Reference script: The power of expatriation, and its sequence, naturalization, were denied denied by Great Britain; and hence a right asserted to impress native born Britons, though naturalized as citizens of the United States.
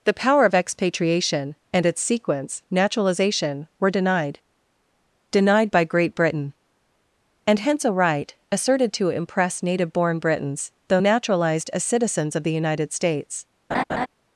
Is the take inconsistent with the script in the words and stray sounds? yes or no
yes